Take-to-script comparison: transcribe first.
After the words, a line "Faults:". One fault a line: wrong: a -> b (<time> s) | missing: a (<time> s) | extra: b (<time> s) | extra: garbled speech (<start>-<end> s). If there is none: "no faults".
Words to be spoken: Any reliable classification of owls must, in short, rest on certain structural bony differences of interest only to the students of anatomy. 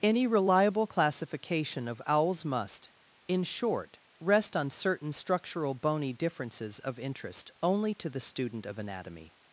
Any reliable classification of owls must, in short, rest on certain structural bony differences of interest only to the student of anatomy.
Faults:
wrong: students -> student (8.2 s)